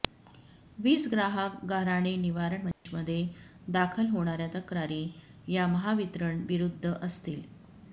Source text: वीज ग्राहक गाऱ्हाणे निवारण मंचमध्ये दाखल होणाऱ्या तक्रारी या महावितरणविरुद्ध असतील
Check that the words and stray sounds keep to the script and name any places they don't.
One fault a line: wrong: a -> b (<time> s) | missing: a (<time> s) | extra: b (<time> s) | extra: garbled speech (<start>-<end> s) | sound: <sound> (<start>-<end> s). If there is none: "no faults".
sound: dropout (2.7-2.9 s)